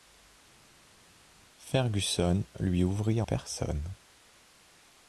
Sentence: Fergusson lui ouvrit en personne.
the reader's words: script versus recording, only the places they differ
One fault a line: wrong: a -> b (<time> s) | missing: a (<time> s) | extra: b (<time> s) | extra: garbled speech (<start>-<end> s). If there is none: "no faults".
missing: en (3.2 s)